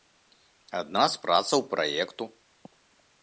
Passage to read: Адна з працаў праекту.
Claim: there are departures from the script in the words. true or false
false